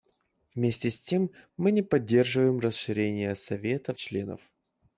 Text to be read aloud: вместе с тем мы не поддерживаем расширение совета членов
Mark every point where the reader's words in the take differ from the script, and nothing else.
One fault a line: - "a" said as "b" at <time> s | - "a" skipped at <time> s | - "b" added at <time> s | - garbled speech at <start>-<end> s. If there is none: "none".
none